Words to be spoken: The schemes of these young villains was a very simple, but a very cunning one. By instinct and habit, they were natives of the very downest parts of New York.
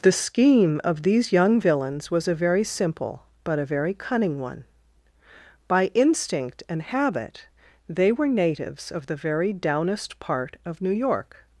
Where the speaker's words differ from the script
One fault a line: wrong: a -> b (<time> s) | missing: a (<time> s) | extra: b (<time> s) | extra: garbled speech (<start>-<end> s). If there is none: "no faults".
wrong: schemes -> scheme (0.1 s)
wrong: parts -> part (10.2 s)